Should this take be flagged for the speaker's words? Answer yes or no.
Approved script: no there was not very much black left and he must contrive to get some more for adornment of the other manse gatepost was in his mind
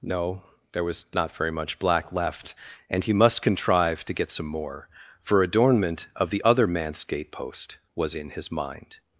no